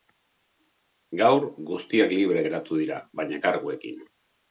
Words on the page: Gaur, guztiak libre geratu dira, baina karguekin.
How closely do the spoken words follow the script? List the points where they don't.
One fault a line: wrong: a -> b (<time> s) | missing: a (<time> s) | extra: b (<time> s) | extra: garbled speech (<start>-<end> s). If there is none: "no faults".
no faults